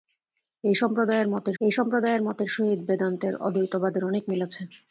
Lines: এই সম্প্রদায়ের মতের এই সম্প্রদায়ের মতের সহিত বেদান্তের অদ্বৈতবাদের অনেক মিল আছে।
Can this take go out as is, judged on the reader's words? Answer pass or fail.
pass